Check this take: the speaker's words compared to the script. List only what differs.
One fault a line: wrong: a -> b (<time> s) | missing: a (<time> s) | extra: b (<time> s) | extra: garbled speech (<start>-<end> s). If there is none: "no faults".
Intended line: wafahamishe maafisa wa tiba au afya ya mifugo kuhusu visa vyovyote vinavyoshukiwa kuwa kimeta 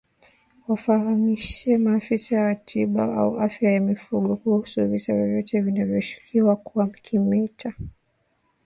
no faults